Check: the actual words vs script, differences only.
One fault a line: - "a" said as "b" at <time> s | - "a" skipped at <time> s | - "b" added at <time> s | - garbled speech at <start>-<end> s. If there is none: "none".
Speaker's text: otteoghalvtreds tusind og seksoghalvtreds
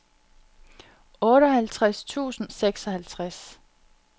none